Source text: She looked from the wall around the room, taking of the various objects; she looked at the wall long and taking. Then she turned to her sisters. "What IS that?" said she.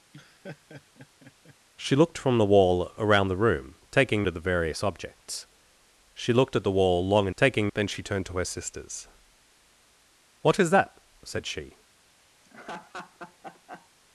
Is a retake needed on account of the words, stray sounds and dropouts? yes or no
yes